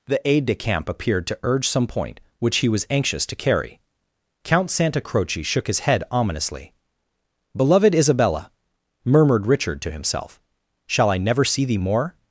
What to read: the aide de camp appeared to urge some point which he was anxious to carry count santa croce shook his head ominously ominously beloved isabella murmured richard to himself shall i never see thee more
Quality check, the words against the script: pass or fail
fail